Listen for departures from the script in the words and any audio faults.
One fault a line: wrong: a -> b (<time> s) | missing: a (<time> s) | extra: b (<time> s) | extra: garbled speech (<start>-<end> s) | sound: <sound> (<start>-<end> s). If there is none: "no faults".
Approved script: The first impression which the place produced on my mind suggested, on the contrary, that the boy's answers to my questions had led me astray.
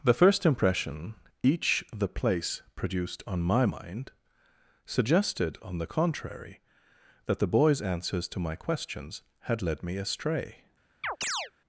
wrong: which -> each (1.4 s)
sound: chirp (11.0-11.5 s)